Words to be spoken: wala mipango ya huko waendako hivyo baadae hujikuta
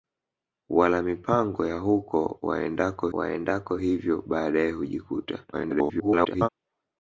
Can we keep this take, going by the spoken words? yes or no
no